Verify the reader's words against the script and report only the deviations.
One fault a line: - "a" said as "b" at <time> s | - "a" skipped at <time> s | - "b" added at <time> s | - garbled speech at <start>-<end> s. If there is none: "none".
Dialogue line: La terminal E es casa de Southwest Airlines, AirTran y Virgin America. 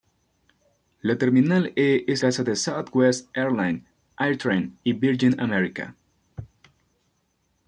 none